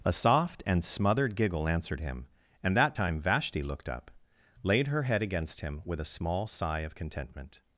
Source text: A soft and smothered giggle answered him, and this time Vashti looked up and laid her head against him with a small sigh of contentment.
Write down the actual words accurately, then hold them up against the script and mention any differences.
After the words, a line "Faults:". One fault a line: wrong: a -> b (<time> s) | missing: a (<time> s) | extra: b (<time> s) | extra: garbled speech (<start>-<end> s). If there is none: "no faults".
A soft and smothered giggle answered him, and that time Vashti looked up laid her head against him with a small sigh of contentment.
Faults:
wrong: this -> that (2.8 s)
missing: and (4.1 s)